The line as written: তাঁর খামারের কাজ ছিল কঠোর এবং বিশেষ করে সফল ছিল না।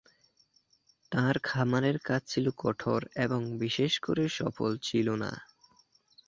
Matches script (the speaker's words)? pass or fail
pass